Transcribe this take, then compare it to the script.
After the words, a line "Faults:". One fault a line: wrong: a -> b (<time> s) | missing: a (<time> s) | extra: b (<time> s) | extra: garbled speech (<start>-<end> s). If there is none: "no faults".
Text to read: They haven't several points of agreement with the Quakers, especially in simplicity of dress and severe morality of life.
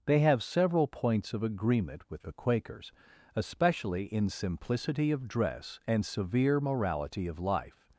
They have several points of agreement with the Quakers, especially in simplicity of dress and severe morality of life.
Faults:
wrong: haven't -> have (0.2 s)